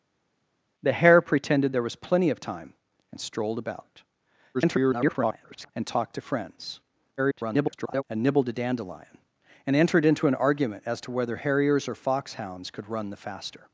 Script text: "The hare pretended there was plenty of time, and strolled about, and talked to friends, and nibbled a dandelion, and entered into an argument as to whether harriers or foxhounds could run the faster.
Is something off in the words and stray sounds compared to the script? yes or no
yes